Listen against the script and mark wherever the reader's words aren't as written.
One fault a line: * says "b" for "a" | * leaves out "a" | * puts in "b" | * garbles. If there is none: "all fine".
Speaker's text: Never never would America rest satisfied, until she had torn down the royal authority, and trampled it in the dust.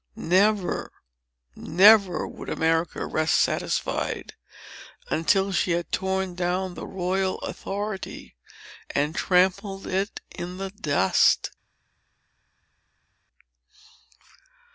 all fine